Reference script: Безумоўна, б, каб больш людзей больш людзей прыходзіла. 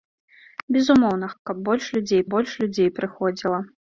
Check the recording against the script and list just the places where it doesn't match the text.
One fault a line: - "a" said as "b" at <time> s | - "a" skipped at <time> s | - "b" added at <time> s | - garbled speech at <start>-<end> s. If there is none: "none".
none